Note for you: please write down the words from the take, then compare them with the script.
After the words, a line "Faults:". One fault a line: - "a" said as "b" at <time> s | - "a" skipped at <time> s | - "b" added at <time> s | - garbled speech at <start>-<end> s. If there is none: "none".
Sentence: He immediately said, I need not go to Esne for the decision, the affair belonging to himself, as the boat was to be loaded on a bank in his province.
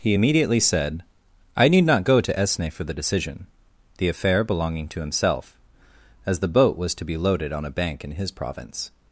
He immediately said, I need not go to Esne for the decision, the affair belonging to himself, as the boat was to be loaded on a bank in his province.
Faults:
none